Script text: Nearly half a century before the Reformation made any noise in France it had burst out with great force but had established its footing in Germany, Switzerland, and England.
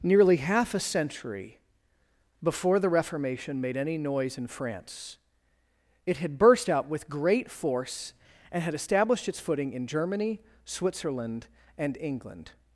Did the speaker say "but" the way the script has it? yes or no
no